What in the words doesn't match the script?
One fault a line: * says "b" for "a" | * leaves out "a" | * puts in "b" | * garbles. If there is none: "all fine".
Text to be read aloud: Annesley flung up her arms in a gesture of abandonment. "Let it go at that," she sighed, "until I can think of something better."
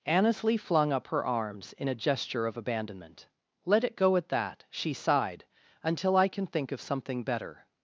all fine